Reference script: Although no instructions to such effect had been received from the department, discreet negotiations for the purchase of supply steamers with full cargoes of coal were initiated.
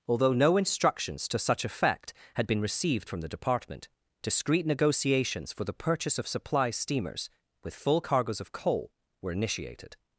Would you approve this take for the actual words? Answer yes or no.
yes